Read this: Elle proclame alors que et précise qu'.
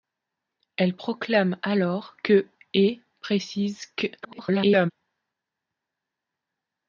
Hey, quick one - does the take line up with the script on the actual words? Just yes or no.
no